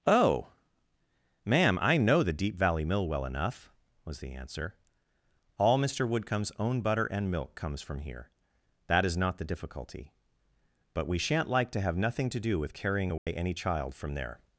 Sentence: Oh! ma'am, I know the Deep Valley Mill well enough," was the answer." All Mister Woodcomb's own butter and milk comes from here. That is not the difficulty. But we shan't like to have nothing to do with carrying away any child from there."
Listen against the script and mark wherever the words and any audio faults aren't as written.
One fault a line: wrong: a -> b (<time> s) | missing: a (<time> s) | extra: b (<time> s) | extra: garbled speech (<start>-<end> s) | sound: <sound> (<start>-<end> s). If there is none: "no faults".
sound: dropout (13.2-13.3 s)